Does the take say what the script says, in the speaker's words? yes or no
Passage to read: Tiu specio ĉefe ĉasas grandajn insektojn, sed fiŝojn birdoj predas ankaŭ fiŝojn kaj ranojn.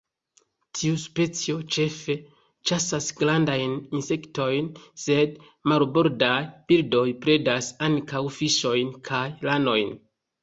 no